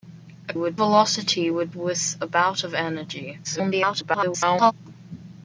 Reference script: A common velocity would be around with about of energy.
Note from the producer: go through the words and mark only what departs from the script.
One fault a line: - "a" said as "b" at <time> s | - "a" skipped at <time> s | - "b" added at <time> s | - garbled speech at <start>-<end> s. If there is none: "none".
- "common" said as "would" at 0.5 s
- "be around" skipped at 1.7 s
- garbled speech at 3.4-4.7 s